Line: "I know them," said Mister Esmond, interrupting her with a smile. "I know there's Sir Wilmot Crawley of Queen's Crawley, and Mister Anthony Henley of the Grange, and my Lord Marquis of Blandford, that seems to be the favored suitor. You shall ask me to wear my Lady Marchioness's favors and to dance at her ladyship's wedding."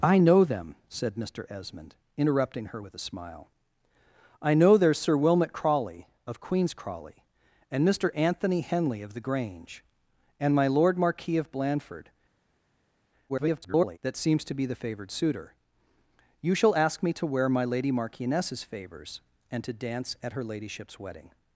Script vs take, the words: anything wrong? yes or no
yes